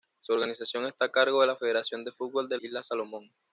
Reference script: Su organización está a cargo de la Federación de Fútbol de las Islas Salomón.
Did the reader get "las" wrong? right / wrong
wrong